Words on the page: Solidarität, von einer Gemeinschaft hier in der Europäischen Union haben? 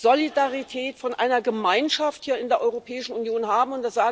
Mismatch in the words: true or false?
false